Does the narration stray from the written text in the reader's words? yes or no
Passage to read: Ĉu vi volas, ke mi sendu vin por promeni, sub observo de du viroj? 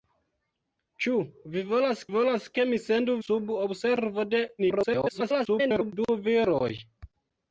yes